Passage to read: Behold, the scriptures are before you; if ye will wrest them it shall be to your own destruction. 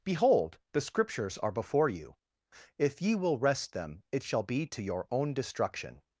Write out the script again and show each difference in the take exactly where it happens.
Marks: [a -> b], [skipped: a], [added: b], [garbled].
Behold, the scriptures are before you; if ye will wrest them it shall be to your own destruction.